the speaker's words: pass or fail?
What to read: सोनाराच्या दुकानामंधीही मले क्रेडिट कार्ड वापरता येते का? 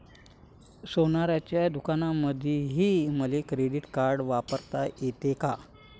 pass